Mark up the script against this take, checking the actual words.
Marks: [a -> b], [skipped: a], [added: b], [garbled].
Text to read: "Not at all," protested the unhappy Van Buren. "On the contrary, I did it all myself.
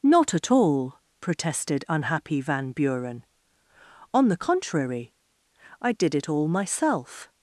"Not at all," protested [skipped: the] unhappy Van Buren. "On the contrary, I did it all myself.